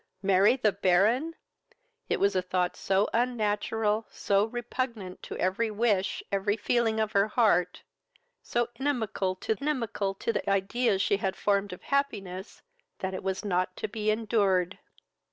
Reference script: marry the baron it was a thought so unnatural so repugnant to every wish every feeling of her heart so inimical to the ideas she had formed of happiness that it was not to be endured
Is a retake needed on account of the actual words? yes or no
yes